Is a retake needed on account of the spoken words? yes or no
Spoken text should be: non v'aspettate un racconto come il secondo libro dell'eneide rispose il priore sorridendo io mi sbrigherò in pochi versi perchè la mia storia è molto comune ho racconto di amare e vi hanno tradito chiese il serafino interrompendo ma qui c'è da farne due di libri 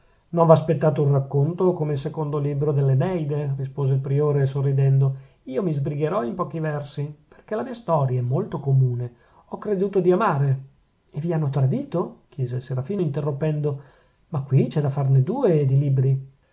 yes